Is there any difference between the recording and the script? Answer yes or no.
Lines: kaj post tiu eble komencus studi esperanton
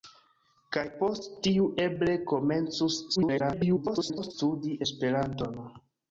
yes